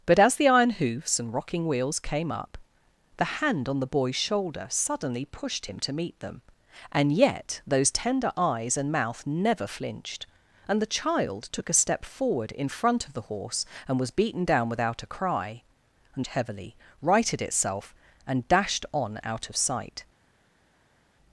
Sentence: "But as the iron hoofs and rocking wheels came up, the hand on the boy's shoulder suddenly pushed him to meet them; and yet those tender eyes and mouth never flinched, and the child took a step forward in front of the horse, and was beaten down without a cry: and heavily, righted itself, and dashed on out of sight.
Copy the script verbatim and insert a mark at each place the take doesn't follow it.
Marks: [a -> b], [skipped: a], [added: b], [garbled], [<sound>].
"But as the iron hoofs and rocking wheels came up, the hand on the boy's shoulder suddenly pushed him to meet them; and yet those tender eyes and mouth never flinched, and the child took a step forward in front of the horse, and was beaten down without a cry: and heavily, righted itself, and dashed on out of sight.